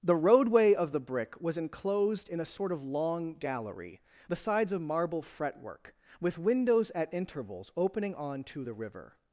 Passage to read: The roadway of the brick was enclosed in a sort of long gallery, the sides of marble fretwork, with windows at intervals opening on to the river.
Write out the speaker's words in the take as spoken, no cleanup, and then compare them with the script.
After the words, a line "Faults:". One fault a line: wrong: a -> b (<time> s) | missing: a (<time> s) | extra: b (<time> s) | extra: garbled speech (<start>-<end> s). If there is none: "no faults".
The roadway of the brick was enclosed in a sort of long gallery, the sides of marble fretwork, with windows at intervals opening on to the river.
Faults:
no faults